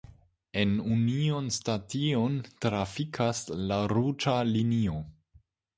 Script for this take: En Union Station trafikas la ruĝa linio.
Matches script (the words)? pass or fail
pass